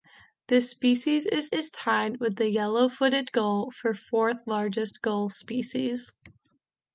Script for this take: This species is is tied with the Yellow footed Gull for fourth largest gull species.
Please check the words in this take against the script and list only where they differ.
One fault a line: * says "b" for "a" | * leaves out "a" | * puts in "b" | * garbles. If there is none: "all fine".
all fine